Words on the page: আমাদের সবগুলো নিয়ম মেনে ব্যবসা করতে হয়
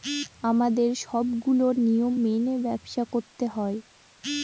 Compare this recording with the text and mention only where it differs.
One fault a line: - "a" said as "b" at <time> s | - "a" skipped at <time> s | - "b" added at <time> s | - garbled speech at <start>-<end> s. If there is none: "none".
none